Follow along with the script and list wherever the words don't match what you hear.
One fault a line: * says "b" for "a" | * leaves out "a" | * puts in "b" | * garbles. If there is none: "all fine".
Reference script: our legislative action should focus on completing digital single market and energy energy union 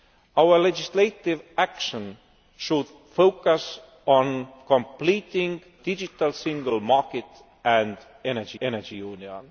all fine